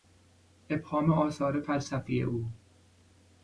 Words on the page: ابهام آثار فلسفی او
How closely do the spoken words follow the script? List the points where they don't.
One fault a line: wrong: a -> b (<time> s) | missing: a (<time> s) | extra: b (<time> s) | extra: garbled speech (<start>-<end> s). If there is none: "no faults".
no faults